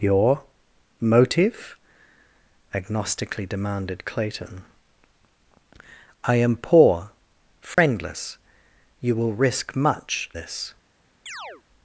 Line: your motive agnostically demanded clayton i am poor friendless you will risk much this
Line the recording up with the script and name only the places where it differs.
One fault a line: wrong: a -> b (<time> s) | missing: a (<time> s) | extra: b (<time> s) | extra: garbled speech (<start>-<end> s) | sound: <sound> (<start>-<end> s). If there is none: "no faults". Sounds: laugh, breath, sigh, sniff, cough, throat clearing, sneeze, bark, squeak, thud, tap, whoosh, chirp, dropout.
sound: dropout (7.7-7.8 s)
sound: chirp (11.3-11.6 s)